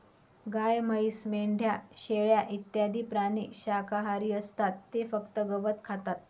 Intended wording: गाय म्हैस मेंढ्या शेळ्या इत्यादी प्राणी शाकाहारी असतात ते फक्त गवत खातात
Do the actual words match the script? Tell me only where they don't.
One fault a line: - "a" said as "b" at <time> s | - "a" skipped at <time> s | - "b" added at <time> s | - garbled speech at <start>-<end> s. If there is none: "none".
none